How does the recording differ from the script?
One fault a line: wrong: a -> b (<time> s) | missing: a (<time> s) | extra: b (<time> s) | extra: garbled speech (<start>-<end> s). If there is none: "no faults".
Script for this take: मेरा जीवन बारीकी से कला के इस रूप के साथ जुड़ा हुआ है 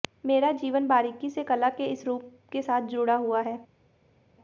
no faults